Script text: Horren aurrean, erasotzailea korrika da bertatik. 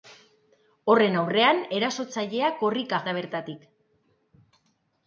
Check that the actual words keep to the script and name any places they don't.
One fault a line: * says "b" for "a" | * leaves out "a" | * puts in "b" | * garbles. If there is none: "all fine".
all fine